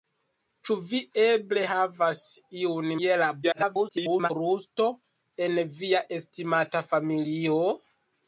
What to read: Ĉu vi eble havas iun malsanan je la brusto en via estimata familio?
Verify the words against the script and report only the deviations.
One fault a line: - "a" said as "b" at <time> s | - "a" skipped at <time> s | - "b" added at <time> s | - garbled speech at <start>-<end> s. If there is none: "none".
- "malsanan" skipped at 2.9 s
- garbled speech at 3.4-4.3 s